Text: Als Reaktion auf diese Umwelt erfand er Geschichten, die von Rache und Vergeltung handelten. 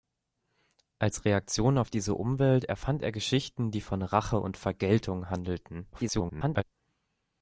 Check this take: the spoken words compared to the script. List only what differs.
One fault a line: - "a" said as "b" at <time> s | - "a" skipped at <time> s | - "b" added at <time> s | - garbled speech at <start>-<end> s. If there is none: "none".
- garbled speech at 5.9-6.6 s